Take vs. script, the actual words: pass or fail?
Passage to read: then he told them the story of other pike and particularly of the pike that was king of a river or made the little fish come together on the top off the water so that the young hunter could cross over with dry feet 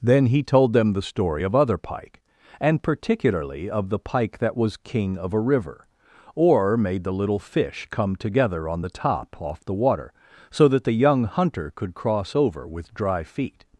pass